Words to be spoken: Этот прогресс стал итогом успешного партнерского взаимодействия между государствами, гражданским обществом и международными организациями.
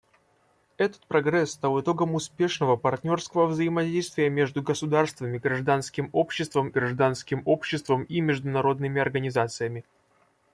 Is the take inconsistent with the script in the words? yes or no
yes